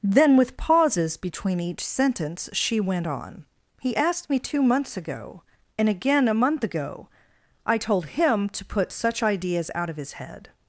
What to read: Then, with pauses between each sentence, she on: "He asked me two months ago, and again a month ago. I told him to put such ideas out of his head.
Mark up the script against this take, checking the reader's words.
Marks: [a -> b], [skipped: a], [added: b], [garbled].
Then, with pauses between each sentence, she [added: went] on: "He asked me two months ago, and again a month ago. I told him to put such ideas out of his head.